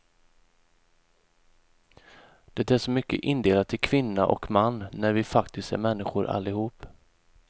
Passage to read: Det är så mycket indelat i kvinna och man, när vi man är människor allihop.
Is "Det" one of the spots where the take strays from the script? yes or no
no